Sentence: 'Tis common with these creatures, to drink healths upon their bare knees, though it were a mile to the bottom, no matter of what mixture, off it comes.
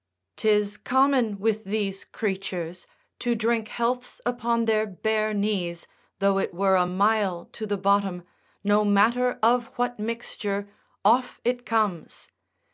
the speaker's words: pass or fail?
pass